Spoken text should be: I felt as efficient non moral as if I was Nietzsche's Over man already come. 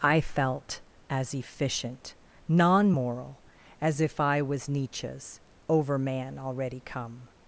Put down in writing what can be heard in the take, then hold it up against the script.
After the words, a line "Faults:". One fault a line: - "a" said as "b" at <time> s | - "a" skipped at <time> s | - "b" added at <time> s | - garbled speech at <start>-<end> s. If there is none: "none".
I felt as efficient non moral as if I was Nietzsche's Over man already come.
Faults:
none